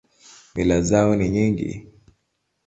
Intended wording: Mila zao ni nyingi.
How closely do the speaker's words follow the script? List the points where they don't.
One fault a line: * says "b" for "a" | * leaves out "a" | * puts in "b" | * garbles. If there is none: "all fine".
all fine